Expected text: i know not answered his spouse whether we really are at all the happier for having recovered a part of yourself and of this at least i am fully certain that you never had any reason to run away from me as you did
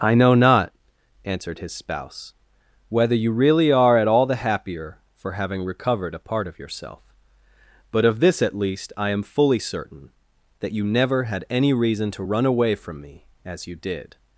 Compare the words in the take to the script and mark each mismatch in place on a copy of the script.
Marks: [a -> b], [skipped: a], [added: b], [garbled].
i know not answered his spouse whether [we -> you] really are at all the happier for having recovered a part of yourself [and -> but] of this at least i am fully certain that you never had any reason to run away from me as you did